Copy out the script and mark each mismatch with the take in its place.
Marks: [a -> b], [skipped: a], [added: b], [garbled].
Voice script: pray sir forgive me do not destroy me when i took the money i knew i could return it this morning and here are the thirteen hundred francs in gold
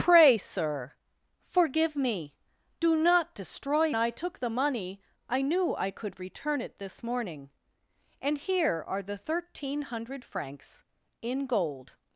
pray sir forgive me do not destroy [skipped: me when] i took the money i knew i could return it this morning and here are the thirteen hundred francs in gold